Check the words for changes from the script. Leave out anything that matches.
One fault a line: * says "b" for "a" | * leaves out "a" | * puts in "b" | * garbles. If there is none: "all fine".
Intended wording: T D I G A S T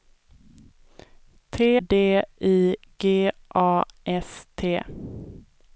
all fine